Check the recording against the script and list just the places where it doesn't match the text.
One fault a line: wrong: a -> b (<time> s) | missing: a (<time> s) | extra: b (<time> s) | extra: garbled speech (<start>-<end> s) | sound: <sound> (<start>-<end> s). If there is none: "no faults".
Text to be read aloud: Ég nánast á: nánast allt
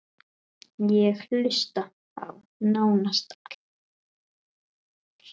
wrong: nánast -> hlusta (1.3 s)